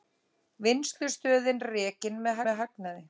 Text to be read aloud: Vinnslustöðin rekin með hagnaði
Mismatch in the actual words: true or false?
true